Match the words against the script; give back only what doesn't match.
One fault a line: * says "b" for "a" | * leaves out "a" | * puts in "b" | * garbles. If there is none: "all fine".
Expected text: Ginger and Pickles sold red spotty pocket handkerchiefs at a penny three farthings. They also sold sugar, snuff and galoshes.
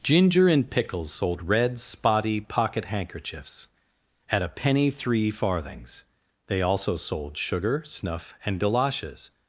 all fine